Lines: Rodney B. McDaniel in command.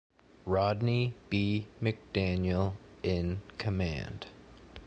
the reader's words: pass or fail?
pass